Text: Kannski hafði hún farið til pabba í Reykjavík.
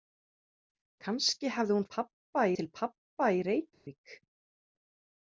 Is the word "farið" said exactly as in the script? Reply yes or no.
no